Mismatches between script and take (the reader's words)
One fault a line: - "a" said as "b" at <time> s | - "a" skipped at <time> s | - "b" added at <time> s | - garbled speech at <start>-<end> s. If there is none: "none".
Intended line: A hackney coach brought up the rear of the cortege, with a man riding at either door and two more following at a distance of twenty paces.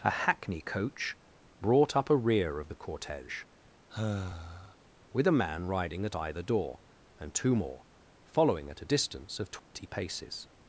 - "the" said as "a" at 2.1 s